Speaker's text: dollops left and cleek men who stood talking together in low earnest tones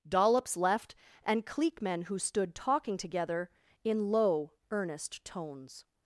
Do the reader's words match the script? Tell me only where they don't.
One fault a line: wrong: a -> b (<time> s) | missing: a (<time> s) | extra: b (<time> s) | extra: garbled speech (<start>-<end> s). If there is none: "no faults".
no faults